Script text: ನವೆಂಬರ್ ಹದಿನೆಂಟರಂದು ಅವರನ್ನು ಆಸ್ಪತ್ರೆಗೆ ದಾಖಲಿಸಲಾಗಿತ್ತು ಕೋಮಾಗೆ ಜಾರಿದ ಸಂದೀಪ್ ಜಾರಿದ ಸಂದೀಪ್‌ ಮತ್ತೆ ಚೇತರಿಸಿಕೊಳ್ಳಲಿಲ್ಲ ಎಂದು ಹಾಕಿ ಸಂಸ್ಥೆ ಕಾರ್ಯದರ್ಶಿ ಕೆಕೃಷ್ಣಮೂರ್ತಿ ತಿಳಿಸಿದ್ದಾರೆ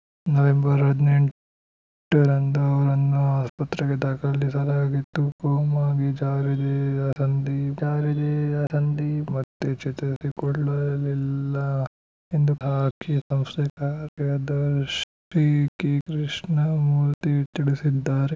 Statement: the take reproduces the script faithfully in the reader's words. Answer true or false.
true